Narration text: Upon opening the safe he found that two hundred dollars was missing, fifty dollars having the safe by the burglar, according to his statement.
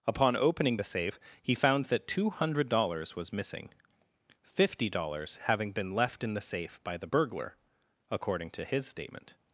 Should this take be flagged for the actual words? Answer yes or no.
yes